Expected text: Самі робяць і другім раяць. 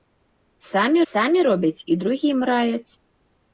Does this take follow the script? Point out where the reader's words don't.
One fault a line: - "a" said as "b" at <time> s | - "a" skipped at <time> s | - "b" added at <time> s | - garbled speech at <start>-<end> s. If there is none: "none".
- "самі" added at 1.1 s